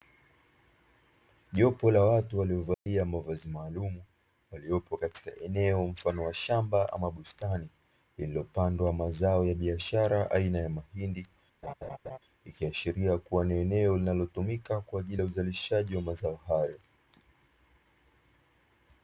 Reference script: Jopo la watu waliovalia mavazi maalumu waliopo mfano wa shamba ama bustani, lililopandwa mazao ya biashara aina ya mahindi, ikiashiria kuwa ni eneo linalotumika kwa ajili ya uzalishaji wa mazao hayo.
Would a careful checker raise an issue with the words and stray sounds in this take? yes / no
yes